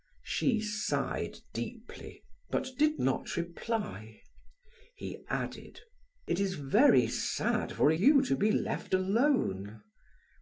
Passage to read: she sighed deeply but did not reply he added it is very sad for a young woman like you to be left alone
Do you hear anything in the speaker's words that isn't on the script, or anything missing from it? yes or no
yes